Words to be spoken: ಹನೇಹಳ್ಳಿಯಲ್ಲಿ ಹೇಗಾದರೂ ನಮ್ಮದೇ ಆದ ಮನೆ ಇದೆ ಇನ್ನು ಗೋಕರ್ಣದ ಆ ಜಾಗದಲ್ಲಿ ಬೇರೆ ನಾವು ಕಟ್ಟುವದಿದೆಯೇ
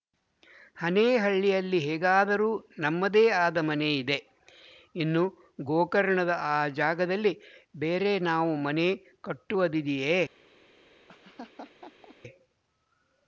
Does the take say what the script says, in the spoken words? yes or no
no